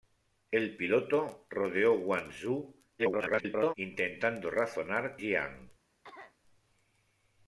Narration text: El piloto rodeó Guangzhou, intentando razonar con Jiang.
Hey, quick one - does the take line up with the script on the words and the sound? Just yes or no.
no